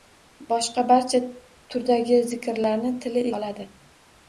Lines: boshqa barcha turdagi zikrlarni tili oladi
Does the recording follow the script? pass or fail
pass